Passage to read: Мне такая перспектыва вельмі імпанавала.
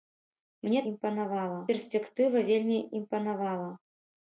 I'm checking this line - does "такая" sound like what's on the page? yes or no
no